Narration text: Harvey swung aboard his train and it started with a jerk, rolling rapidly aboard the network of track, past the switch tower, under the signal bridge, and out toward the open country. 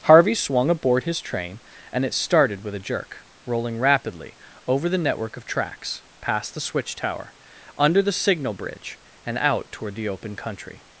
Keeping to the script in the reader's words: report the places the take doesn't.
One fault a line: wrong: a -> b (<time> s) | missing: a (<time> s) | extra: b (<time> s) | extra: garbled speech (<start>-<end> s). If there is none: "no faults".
wrong: aboard -> over (4.7 s)
wrong: track -> tracks (5.5 s)